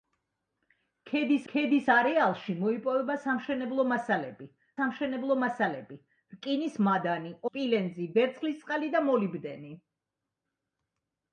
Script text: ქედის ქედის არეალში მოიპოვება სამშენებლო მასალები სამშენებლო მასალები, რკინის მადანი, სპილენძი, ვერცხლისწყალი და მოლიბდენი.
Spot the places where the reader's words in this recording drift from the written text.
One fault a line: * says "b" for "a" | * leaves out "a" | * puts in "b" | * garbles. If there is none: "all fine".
all fine